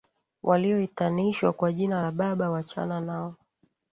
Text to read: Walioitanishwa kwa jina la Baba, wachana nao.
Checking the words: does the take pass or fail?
pass